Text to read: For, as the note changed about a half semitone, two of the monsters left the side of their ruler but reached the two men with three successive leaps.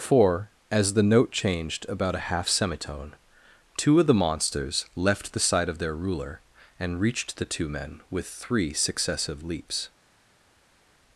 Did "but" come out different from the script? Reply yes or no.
yes